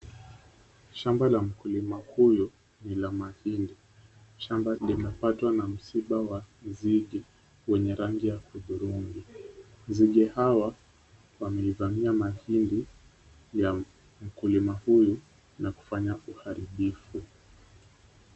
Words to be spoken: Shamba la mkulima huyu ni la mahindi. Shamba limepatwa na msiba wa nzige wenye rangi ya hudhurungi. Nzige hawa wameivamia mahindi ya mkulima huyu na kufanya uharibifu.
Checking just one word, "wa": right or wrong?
right